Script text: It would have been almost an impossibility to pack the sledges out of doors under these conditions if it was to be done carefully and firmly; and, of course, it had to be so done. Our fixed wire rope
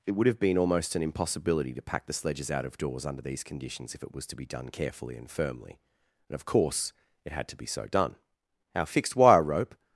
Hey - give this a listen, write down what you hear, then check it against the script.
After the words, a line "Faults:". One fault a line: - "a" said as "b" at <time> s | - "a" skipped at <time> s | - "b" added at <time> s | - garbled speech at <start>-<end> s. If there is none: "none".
It would have been almost an impossibility to pack the sledges out of doors under these conditions if it was to be done carefully and firmly; and, of course, it had to be so done. Our fixed wire rope
Faults:
none